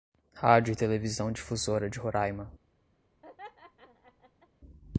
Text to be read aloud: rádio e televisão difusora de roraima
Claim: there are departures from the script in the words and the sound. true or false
true